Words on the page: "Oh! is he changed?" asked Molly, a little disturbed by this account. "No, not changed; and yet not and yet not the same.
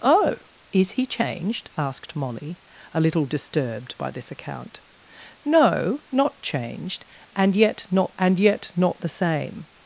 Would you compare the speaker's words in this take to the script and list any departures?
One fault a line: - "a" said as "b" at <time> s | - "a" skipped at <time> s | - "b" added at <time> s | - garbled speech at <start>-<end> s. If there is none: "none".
none